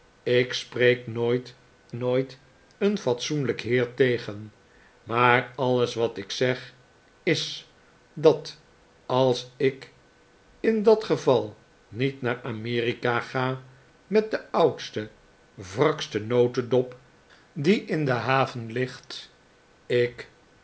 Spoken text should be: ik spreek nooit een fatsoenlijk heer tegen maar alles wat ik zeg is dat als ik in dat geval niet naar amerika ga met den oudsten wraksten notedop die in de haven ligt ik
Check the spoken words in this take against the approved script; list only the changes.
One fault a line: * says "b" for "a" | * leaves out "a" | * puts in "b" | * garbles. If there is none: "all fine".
* puts in "nooit"